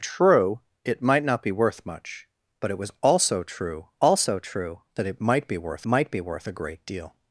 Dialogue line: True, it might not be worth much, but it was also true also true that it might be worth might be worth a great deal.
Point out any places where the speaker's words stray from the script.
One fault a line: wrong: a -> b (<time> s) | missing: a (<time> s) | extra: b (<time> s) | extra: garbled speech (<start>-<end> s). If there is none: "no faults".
no faults